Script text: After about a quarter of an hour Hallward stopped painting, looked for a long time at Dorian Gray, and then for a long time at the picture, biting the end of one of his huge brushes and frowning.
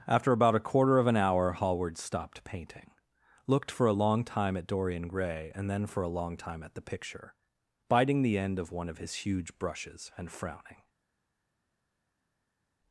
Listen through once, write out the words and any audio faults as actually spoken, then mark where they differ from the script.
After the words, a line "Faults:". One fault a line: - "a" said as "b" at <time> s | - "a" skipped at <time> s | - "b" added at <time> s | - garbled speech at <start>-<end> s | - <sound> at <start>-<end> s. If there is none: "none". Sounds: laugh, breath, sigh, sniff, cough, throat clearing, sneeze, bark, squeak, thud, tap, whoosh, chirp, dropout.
After about a quarter of an hour Hallward stopped painting, looked for a long time at Dorian Gray, and then for a long time at the picture, biting the end of one of his huge brushes and frowning.
Faults:
none